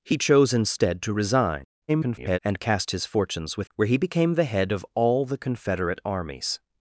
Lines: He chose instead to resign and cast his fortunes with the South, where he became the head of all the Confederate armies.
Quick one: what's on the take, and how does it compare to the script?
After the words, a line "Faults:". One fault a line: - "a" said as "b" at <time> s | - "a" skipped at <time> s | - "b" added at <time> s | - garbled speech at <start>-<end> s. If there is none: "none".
He chose instead to resign [garbled] and cast his fortunes with where he became the head of all the Confederate armies.
Faults:
- garbled speech at 1.9-2.4 s
- "the South" skipped at 3.7 s